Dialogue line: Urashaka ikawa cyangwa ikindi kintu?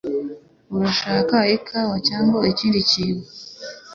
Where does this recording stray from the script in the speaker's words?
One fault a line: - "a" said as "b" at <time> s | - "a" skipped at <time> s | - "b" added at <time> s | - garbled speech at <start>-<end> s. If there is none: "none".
none